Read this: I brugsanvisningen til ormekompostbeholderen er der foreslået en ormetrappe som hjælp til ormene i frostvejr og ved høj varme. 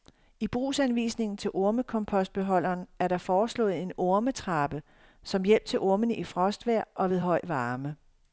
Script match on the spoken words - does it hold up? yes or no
yes